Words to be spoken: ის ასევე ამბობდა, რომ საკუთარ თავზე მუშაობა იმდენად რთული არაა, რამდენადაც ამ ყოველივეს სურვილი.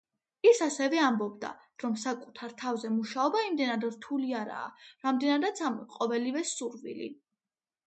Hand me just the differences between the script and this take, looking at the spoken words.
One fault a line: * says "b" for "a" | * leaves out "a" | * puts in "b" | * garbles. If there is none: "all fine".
all fine